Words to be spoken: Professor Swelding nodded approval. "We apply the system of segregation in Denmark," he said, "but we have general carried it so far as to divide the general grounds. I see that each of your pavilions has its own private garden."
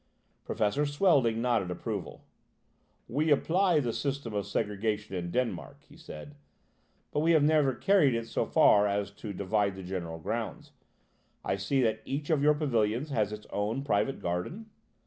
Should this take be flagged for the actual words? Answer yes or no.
yes